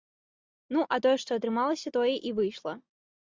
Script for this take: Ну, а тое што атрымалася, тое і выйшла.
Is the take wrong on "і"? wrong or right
right